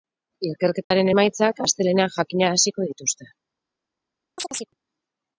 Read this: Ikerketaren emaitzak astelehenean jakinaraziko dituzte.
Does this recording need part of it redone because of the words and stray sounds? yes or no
yes